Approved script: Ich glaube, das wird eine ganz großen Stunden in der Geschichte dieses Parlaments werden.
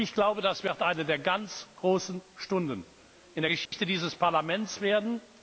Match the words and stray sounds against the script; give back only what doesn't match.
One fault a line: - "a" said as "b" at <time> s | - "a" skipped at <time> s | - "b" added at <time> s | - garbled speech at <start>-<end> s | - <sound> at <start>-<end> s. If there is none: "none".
- "der" added at 1.1 s
- dropout at 3.7-3.7 s